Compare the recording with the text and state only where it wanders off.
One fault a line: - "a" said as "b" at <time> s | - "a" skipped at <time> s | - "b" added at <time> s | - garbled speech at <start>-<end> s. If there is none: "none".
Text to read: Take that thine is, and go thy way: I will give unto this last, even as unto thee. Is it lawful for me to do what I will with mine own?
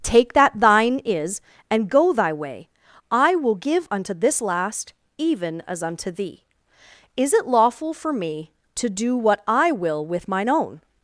none